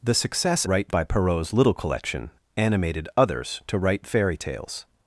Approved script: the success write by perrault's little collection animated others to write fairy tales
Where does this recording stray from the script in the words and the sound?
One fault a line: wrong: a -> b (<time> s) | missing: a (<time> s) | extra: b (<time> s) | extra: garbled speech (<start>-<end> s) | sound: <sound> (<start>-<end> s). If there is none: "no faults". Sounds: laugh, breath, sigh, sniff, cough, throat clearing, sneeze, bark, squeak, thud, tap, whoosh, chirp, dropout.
no faults